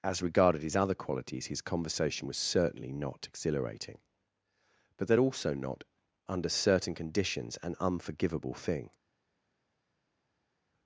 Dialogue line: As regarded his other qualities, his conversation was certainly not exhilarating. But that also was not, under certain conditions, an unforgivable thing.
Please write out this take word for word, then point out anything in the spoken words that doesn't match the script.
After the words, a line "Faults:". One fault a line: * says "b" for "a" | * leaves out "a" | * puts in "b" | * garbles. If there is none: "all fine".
As regarded his other qualities, his conversation was certainly not exhilarating. But that also not, under certain conditions, an unforgivable thing.
Faults:
* leaves out "was"